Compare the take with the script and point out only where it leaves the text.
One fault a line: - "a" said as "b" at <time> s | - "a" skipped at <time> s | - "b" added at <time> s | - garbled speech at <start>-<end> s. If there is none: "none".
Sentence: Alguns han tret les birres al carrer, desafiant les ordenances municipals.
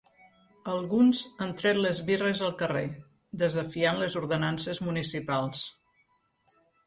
none